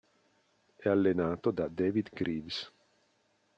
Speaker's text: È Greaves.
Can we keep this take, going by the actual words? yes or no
no